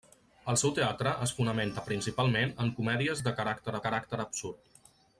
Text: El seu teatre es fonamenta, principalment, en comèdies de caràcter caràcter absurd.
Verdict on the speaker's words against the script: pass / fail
pass